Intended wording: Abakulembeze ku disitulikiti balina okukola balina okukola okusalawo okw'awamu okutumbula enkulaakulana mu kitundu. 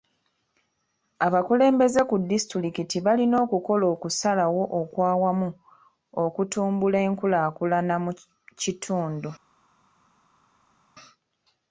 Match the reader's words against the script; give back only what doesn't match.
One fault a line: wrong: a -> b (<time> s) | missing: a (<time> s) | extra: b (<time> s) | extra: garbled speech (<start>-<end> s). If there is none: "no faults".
missing: balina okukola (3.9 s)